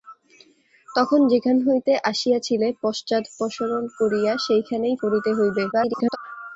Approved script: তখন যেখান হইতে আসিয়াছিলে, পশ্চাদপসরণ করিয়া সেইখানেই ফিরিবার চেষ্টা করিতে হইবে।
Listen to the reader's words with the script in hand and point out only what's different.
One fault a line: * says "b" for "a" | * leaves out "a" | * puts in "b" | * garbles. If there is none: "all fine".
* leaves out "ফিরিবার চেষ্টা"
* garbles